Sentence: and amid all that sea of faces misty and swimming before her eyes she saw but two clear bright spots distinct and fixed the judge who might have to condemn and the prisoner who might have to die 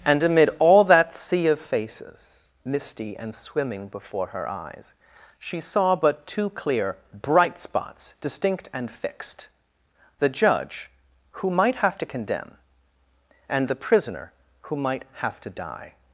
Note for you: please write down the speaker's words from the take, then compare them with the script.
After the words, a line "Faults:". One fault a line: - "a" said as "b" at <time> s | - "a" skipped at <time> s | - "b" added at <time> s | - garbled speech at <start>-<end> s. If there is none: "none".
and amid all that sea of faces misty and swimming before her eyes she saw but two clear bright spots distinct and fixed the judge who might have to condemn and the prisoner who might have to die
Faults:
none